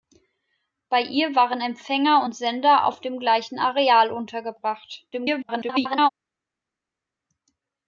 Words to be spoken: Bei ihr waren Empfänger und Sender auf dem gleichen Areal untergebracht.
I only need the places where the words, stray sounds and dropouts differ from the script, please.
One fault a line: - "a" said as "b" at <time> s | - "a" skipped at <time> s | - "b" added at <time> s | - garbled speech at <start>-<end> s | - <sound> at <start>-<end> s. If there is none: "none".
- garbled speech at 5.1-6.1 s